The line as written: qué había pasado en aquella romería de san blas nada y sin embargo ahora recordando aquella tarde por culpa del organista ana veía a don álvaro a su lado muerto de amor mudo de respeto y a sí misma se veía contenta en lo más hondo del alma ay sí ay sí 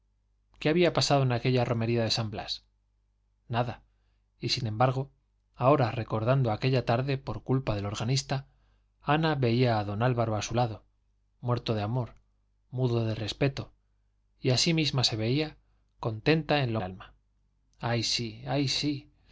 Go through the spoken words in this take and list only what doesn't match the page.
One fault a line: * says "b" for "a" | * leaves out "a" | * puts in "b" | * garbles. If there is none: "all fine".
* leaves out "más hondo del"